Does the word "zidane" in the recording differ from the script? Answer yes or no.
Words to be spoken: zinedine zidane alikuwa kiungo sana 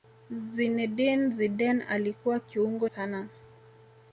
no